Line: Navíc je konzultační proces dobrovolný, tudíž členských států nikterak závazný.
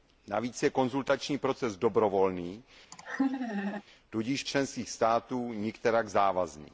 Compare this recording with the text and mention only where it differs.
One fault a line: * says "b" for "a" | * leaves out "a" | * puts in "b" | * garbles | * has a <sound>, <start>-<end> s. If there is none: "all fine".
* has a laugh, 2.9-3.8 s